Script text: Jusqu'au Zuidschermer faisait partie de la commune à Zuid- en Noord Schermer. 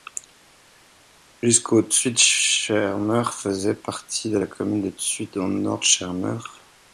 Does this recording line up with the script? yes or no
no